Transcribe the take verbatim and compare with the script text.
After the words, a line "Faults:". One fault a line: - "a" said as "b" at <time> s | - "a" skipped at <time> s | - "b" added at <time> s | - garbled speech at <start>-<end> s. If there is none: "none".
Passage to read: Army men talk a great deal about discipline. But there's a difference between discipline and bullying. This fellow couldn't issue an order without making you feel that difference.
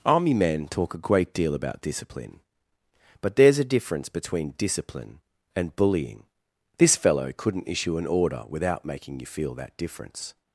Army men talk a great deal about discipline. But there's a difference between discipline and bullying. This fellow couldn't issue an order without making you feel that difference.
Faults:
none